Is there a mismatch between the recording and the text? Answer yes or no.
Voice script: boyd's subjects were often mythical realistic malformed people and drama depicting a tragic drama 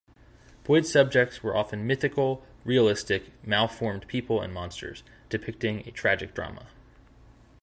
yes